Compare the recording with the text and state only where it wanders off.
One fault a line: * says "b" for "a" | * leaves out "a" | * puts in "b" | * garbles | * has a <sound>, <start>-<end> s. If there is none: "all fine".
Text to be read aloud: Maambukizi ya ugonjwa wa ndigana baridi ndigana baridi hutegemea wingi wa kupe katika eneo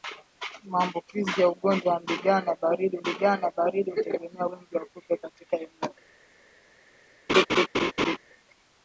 * has a laugh, 7.3-8.2 s